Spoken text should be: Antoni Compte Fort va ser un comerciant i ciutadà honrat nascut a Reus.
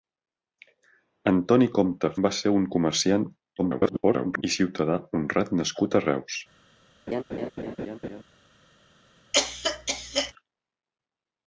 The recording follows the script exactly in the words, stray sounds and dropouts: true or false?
false